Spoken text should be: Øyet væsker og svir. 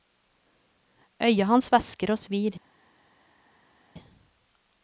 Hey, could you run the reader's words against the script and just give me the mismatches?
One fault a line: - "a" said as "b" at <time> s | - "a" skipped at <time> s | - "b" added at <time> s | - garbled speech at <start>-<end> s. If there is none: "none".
- "hans" added at 1.4 s